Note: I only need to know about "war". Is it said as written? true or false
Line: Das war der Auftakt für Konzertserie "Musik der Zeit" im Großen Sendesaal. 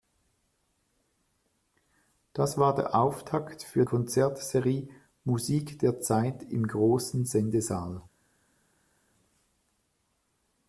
true